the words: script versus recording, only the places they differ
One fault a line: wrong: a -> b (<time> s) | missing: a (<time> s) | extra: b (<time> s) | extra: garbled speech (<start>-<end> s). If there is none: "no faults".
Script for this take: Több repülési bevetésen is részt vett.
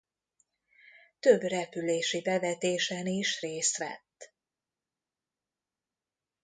no faults